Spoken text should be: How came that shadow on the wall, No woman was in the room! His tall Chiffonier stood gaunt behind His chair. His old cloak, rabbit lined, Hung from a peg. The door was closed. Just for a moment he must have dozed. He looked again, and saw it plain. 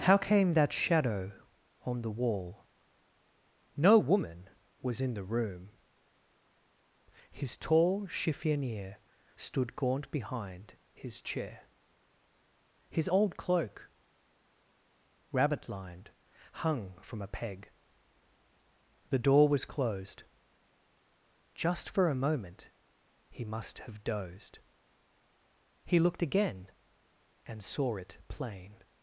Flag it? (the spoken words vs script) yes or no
no